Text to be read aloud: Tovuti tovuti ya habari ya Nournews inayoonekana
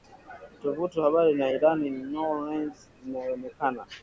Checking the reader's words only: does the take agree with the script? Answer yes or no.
no